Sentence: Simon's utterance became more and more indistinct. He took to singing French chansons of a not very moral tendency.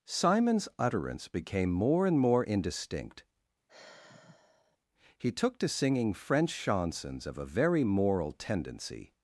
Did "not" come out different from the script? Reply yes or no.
yes